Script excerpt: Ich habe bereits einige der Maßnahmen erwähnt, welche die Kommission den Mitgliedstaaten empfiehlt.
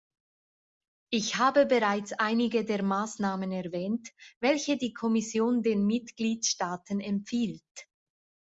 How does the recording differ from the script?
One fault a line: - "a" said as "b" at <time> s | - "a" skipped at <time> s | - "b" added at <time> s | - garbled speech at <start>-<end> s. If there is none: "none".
none